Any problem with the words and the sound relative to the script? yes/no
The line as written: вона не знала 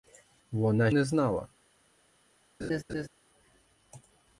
yes